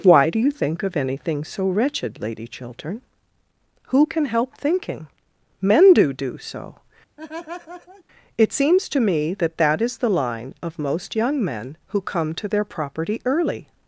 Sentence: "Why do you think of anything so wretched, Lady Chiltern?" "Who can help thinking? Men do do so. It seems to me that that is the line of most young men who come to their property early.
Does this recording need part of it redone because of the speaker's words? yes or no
no